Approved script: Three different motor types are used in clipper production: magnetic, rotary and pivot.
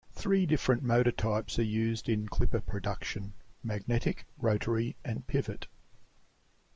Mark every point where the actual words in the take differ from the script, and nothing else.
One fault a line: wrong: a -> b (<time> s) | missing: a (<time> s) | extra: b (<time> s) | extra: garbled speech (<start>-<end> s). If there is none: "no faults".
no faults